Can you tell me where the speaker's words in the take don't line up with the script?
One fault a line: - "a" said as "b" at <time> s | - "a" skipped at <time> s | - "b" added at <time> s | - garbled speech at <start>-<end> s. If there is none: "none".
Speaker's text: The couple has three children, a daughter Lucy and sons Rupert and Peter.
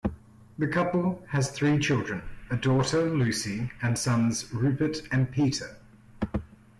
none